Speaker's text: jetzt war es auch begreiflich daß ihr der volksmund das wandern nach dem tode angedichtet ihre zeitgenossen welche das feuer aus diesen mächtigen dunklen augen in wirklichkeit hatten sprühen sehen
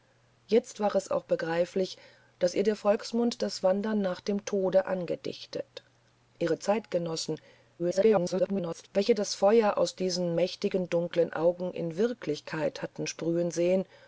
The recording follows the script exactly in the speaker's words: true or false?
false